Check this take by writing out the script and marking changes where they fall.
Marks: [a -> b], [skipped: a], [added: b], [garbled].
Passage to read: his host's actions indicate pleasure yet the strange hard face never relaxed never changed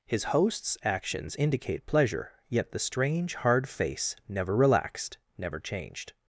his host's actions indicate pleasure yet the strange hard face never relaxed never changed